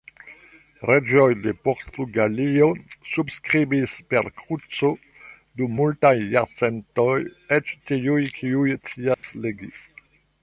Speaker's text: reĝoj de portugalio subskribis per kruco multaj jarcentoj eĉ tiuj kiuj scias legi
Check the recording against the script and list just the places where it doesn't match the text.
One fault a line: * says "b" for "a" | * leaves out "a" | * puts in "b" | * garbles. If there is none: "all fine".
* puts in "dum"